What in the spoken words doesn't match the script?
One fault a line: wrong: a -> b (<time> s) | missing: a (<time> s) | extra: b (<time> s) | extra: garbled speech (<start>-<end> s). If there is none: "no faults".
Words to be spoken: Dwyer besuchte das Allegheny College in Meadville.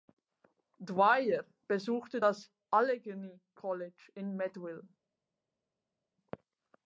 no faults